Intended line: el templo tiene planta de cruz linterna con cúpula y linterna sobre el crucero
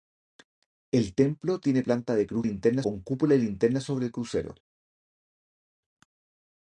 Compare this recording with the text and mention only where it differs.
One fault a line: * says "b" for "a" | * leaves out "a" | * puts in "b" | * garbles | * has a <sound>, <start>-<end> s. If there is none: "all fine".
all fine